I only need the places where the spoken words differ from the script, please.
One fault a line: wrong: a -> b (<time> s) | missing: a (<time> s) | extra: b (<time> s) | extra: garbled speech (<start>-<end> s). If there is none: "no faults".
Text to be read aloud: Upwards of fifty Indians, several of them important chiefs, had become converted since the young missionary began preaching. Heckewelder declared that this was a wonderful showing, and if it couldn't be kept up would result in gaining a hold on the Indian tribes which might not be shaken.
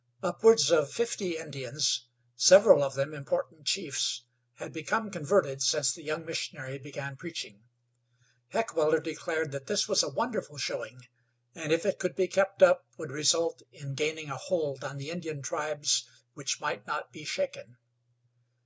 wrong: couldn't -> could (12.0 s)